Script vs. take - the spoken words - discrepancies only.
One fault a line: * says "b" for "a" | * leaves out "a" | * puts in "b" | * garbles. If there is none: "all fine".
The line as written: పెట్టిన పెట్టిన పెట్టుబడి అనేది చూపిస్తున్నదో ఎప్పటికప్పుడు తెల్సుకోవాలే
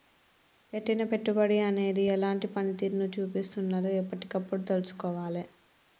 * leaves out "పెట్టిన"
* puts in "ఎలాంటి పనితీరును"